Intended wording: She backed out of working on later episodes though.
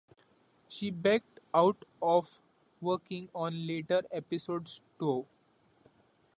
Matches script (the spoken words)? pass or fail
pass